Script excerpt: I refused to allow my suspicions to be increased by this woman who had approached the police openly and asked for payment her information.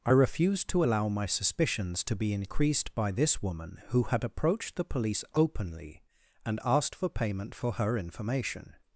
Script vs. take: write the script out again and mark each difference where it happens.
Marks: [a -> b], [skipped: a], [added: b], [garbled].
I refused to allow my suspicions to be increased by this woman who had approached the police openly and asked for payment [added: for] her information.